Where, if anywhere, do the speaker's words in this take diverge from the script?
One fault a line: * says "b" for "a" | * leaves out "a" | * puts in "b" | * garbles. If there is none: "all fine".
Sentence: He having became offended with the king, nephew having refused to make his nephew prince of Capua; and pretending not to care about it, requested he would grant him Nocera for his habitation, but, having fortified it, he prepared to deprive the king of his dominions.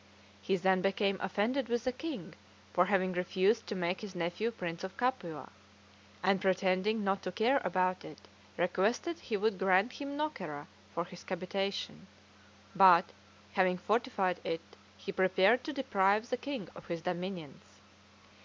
* says "then" for "having"
* says "for" for "nephew"